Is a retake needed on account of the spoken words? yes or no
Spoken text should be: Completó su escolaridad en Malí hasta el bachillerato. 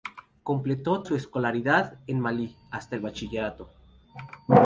no